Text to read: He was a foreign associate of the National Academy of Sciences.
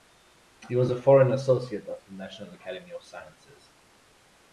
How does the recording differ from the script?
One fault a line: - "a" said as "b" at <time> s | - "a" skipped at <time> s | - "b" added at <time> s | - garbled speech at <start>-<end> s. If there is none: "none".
none